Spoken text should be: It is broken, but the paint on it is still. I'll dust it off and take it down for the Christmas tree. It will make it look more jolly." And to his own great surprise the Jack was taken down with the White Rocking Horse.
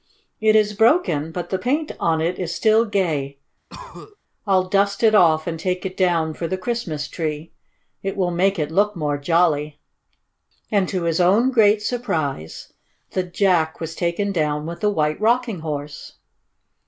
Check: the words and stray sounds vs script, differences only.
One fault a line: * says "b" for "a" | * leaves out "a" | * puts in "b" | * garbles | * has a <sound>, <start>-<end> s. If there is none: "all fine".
* puts in "gay"
* has a cough, 3.7-4.2 s